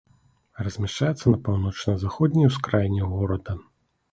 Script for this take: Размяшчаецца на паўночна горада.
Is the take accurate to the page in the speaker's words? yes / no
no